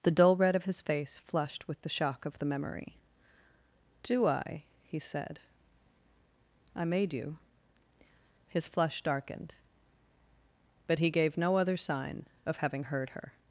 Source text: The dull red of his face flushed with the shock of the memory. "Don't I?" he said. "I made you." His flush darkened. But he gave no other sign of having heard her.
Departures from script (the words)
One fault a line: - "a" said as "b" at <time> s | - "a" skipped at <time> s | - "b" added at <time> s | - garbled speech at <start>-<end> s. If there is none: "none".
- "Don't" said as "Do" at 4.0 s